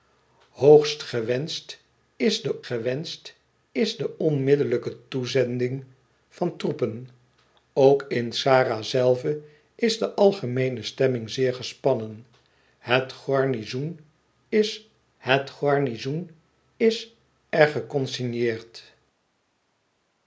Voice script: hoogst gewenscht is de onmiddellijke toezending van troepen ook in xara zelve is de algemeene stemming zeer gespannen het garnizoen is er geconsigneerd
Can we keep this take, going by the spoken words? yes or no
no